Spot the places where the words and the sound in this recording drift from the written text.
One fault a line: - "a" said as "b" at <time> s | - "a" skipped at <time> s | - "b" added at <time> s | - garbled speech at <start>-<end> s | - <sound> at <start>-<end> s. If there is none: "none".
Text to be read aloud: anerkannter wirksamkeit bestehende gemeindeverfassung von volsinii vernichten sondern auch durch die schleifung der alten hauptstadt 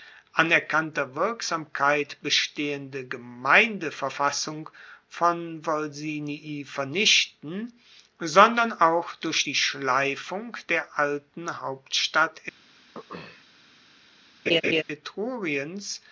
- throat clearing at 12.9-13.4 s
- laugh at 14.5-14.8 s